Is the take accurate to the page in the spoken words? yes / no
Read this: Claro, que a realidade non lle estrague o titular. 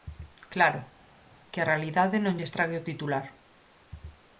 yes